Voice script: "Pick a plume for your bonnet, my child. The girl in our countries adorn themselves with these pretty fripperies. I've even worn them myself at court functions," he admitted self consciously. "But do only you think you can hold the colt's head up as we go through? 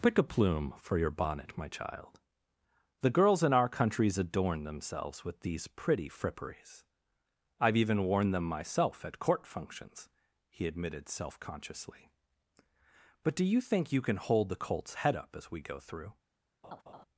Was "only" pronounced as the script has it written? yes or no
no